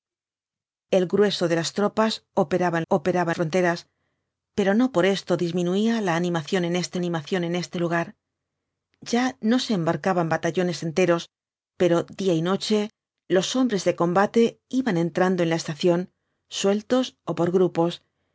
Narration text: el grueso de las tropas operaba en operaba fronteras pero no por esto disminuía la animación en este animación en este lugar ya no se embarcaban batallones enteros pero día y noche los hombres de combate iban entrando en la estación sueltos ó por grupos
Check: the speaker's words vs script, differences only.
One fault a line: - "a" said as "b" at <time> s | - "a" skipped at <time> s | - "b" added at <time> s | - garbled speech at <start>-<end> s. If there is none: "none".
none